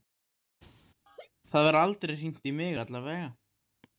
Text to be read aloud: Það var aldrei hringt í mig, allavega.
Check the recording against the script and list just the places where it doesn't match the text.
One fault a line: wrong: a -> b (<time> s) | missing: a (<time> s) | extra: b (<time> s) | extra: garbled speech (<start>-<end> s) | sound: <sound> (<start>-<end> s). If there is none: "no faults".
sound: laugh (1.1-1.3 s)